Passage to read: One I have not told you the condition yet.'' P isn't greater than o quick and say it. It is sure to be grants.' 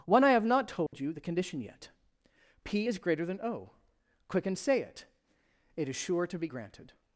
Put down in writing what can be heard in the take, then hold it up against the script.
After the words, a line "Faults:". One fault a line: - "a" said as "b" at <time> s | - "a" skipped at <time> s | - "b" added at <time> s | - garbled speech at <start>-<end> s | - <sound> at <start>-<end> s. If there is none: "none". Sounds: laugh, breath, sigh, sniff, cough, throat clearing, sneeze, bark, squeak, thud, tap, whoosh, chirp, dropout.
One I have not told you the condition yet.'' P is greater than o quick and say it. It is sure to be granted.'
Faults:
- dropout at 0.9-0.9 s
- "isn't" said as "is" at 2.9 s
- "grants" said as "granted" at 6.4 s